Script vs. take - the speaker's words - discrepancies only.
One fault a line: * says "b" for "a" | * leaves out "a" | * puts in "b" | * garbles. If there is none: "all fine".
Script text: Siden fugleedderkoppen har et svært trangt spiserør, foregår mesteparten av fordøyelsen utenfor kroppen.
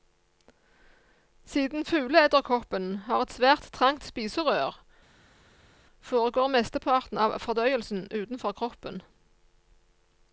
all fine